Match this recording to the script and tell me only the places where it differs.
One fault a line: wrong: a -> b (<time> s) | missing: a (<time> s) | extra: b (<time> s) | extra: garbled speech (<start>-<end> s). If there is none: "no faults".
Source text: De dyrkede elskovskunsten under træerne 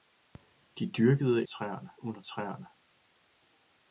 wrong: elskovskunsten -> træerne (1.4 s)